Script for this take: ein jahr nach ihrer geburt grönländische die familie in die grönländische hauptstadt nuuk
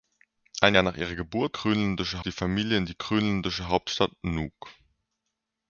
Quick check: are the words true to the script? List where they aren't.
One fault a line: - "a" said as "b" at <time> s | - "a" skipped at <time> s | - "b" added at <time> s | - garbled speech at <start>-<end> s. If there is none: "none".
none